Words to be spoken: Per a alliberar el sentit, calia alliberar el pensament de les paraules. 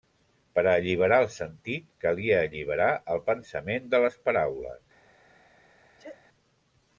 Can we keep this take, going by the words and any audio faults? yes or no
no